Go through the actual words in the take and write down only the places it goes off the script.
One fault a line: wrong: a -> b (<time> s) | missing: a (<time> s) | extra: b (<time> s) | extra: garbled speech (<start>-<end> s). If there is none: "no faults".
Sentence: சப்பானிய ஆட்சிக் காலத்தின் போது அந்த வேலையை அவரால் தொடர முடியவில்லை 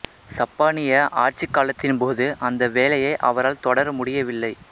no faults